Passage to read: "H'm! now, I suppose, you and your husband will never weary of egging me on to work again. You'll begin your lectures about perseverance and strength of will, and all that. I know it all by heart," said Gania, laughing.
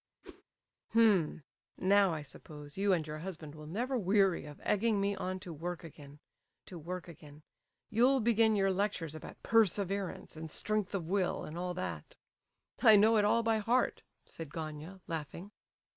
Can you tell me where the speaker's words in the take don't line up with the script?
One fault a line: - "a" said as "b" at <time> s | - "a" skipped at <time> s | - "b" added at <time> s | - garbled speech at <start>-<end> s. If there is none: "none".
- "to work again" added at 6.7 s